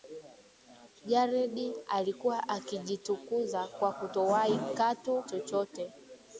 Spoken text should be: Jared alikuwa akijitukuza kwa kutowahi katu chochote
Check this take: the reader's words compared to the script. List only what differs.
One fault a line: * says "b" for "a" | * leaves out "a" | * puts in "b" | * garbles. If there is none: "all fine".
all fine